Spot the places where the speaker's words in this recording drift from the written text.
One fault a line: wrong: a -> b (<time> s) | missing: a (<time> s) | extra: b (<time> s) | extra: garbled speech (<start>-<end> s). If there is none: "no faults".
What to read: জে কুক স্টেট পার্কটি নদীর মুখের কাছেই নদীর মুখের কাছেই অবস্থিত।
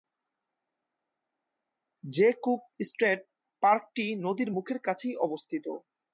missing: নদীর মুখের কাছেই (5.1 s)